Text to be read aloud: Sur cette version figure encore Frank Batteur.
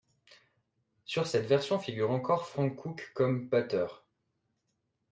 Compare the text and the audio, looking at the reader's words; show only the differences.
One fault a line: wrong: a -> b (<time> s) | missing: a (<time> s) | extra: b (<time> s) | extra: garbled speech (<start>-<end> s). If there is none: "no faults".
extra: Cook comme (2.8 s)